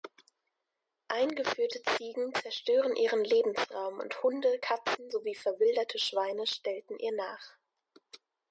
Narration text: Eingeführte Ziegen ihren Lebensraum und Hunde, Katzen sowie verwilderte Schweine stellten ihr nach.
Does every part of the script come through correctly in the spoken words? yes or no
no